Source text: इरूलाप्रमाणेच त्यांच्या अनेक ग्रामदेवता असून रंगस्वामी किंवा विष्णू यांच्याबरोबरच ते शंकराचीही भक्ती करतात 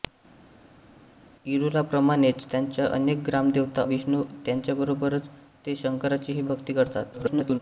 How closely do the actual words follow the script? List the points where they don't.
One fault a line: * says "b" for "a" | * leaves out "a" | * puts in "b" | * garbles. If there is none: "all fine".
* leaves out "असून रंगस्वामी किंवा"
* garbles